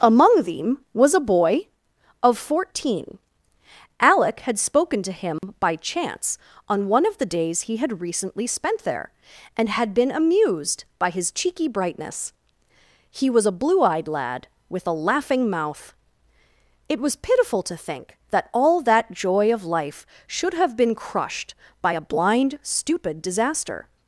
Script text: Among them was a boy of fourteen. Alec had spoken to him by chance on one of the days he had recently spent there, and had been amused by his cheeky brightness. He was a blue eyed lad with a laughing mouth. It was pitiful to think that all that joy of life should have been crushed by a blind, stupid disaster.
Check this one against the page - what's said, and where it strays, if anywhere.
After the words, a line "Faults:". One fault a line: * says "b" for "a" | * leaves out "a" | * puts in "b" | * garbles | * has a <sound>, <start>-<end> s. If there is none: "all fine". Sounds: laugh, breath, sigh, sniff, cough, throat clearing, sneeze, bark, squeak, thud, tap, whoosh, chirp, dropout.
Among them was a boy of fourteen. Alec had spoken to him by chance on one of the days he had recently spent there, and had been amused by his cheeky brightness. He was a blue eyed lad with a laughing mouth. It was pitiful to think that all that joy of life should have been crushed by a blind, stupid disaster.
Faults:
* has a dropout, 5.4-5.4 s